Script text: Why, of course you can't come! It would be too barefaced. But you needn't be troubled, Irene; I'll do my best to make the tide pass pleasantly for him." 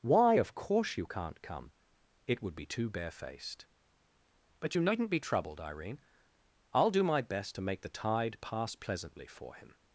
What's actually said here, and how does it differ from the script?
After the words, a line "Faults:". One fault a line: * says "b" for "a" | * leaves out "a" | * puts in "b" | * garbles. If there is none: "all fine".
Why, of course you can't come! It would be too barefaced. But you needn't be troubled, Irene; I'll do my best to make the tide pass pleasantly for him."
Faults:
all fine